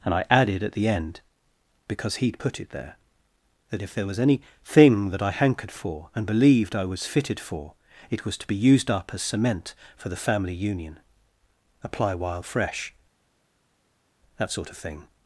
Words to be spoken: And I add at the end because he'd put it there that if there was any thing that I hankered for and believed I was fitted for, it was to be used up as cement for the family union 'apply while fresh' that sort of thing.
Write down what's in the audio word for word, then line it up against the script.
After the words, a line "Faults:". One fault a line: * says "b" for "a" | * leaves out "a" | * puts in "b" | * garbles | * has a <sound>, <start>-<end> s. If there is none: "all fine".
And I added at the end because he'd put it there that if there was any thing that I hankered for and believed I was fitted for, it was to be used up as cement for the family union 'apply while fresh' that sort of thing.
Faults:
* says "added" for "add"